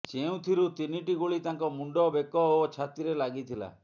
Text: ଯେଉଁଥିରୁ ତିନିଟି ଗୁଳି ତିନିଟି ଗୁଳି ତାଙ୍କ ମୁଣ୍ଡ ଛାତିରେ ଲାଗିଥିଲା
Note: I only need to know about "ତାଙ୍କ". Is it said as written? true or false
false